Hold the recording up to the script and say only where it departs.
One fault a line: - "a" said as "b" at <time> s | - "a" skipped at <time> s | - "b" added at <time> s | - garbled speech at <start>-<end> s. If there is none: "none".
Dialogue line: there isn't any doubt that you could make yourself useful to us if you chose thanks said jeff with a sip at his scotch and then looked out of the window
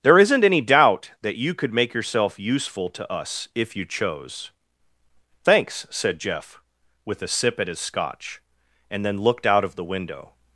none